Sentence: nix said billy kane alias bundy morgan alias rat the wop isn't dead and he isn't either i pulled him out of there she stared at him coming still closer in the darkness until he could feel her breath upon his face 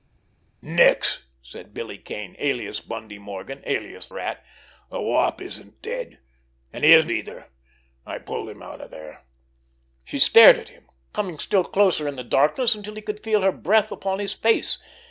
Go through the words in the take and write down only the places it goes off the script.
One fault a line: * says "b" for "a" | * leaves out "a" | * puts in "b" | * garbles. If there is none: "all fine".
all fine